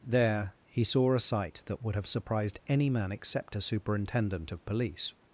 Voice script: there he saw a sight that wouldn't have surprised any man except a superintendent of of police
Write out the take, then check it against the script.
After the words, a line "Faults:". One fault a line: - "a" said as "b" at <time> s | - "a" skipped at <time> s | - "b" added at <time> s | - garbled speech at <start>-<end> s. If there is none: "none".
there he saw a sight that would have surprised any man except a superintendent of police
Faults:
- "wouldn't" said as "would" at 1.8 s
- "of" skipped at 4.6 s